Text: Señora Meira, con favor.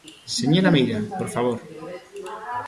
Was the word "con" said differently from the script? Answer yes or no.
yes